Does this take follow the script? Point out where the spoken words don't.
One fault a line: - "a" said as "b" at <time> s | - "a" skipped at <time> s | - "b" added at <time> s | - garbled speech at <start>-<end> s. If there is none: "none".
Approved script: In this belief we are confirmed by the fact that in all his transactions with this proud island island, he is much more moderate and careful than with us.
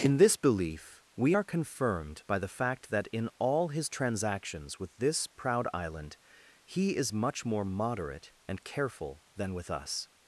- "island" skipped at 6.2 s